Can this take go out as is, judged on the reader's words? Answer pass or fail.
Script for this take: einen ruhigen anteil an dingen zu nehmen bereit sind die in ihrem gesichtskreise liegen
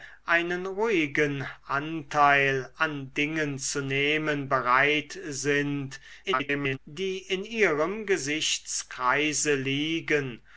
fail